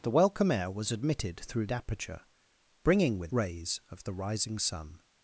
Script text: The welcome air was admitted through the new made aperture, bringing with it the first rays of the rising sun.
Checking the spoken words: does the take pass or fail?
fail